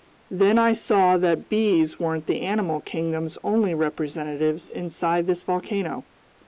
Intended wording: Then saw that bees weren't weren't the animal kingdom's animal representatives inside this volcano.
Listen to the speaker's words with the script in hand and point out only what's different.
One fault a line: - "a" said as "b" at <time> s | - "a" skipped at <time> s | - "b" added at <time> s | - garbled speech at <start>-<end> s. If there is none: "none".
- "I" added at 0.6 s
- "weren't" skipped at 2.2 s
- "animal" said as "only" at 3.4 s